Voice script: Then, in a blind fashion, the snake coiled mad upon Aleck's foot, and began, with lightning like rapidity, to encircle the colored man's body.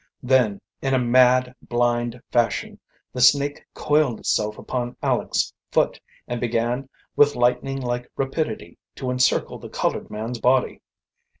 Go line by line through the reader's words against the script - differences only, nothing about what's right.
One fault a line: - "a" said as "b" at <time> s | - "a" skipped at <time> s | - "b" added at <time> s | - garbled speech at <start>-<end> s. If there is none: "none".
- "mad" added at 1.0 s
- "mad" said as "itself" at 4.2 s